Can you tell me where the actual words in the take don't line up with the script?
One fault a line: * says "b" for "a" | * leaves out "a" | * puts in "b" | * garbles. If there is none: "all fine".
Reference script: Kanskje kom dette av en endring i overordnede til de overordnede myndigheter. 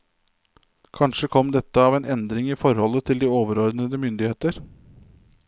* says "forholdet" for "overordnede"